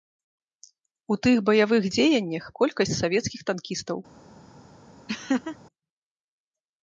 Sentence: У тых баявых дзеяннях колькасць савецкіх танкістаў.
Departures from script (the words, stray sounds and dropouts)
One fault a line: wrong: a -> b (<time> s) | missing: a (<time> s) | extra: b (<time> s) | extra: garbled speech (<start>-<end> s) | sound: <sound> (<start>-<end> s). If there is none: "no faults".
sound: laugh (5.1-5.6 s)